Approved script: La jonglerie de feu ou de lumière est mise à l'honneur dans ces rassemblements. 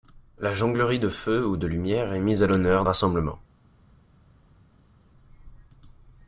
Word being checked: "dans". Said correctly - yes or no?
no